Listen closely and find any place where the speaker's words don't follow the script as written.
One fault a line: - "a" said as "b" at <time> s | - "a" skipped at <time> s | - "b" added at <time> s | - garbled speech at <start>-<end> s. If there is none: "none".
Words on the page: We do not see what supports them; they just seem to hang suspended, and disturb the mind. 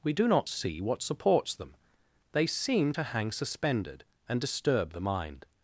- "just" skipped at 2.5 s